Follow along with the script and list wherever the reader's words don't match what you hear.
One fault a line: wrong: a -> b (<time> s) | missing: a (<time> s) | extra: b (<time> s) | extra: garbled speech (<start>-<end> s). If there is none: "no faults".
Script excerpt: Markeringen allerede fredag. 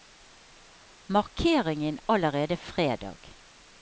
no faults